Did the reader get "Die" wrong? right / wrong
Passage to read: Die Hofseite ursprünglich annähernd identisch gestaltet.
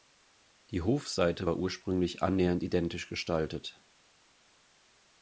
right